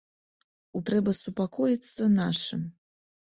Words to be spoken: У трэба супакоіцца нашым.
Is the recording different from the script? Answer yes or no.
no